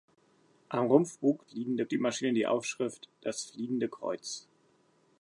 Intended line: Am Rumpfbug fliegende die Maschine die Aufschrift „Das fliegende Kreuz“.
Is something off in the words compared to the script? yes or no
no